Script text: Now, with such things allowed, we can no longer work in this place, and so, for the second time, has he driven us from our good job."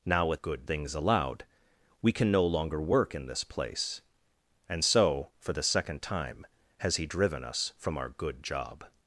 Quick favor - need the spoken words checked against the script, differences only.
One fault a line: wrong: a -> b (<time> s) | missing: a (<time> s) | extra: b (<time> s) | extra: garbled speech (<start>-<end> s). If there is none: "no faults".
wrong: such -> good (0.3 s)